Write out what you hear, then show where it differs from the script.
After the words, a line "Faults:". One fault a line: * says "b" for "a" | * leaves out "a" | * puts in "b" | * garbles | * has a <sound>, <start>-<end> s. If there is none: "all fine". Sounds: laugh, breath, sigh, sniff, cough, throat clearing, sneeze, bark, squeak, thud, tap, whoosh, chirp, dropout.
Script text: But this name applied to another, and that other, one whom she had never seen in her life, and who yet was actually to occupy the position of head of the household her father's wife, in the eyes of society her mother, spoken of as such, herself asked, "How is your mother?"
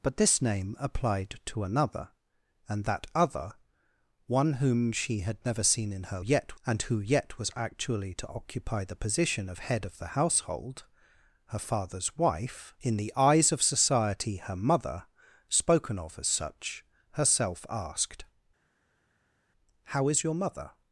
But this name applied to another, and that other, one whom she had never seen in her yet, and who yet was actually to occupy the position of head of the household her father's wife, in the eyes of society her mother, spoken of as such, herself asked, "How is your mother?"
Faults:
* says "yet" for "life"